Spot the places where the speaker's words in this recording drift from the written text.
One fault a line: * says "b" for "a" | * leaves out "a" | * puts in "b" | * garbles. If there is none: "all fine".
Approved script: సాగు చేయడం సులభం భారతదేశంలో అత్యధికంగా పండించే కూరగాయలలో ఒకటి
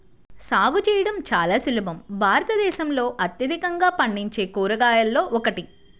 * puts in "చాలా"